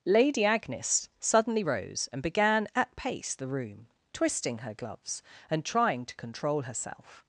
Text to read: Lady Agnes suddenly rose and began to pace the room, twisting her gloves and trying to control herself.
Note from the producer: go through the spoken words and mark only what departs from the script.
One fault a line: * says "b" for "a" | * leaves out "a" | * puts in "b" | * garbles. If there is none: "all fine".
* says "at" for "to"